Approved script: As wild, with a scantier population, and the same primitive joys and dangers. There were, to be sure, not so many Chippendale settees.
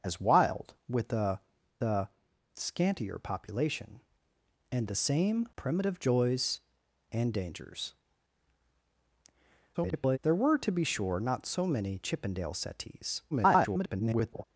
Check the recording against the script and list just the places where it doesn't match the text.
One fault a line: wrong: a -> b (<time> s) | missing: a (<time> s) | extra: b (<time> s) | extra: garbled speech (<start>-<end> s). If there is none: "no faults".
extra: a (1.8 s)
extra: garbled speech (9.7-10.2 s)
extra: garbled speech (13.3-14.4 s)